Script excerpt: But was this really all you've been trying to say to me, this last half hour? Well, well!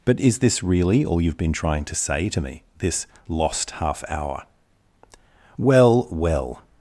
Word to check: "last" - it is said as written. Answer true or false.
false